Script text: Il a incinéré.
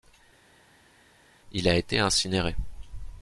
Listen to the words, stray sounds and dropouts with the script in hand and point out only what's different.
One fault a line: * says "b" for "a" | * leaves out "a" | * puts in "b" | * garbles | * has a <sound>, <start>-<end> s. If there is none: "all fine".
* puts in "été"